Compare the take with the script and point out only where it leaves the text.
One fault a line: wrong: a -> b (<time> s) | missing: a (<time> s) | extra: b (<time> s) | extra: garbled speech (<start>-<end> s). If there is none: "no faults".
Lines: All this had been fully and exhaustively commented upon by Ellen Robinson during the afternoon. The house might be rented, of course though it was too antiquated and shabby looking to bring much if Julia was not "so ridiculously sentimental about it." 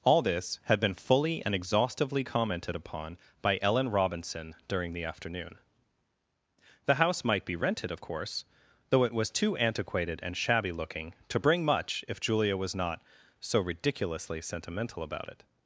no faults